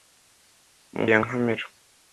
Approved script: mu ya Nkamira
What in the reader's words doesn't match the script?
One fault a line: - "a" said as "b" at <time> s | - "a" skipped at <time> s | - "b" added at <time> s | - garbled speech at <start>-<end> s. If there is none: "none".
none